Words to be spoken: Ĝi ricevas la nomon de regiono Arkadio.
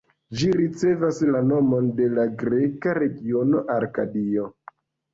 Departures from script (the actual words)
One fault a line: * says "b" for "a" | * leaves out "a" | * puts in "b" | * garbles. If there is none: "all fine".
* puts in "la greka"